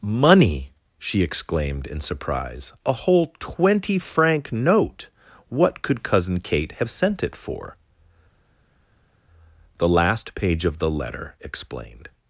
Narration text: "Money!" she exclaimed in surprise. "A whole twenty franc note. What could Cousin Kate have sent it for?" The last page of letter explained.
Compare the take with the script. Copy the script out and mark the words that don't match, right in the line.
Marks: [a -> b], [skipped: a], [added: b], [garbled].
"Money!" she exclaimed in surprise. "A whole twenty franc note. What could Cousin Kate have sent it for?" The last page of [added: the] letter explained.